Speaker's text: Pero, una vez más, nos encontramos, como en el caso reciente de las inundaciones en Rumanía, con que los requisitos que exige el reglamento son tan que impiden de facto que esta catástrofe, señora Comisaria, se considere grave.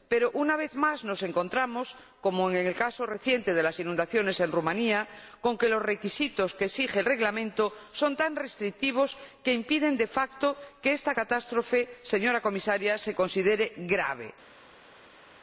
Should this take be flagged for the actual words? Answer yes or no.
yes